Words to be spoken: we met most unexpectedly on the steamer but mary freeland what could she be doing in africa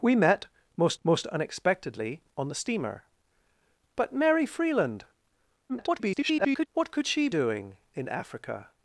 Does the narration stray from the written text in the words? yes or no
yes